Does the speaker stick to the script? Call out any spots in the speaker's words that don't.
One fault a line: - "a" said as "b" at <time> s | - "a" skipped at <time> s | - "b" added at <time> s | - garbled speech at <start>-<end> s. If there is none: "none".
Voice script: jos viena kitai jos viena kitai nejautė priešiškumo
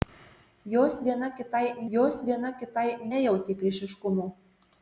none